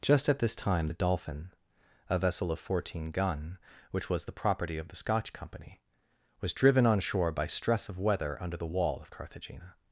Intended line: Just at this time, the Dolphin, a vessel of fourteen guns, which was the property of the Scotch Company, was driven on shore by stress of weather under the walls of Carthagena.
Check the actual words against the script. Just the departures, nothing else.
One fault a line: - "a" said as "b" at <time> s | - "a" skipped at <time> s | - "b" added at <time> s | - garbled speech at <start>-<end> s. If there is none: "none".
- "guns" said as "gun" at 3.1 s
- "walls" said as "wall" at 8.7 s